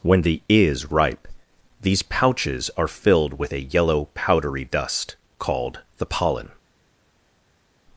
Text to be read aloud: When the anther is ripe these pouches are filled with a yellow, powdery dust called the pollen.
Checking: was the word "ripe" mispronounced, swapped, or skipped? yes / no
no